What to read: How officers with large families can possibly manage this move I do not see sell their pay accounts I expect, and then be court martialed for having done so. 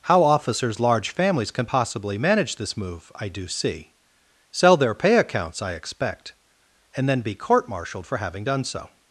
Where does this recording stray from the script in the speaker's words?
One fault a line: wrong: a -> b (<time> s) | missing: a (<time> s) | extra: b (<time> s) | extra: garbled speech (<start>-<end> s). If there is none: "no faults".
missing: with (0.8 s)
missing: not (3.5 s)